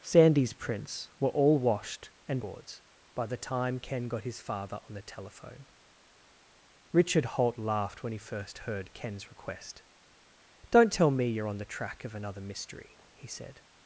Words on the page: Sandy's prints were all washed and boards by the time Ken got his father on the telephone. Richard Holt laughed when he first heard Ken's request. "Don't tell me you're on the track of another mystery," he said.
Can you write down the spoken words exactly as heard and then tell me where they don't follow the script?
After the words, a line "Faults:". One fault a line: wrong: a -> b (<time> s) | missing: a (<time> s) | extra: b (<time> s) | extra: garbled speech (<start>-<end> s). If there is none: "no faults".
Sandy's prints were all washed and boards by the time Ken got his father on the telephone. Richard Holt laughed when he first heard Ken's request. "Don't tell me you're on the track of another mystery," he said.
Faults:
no faults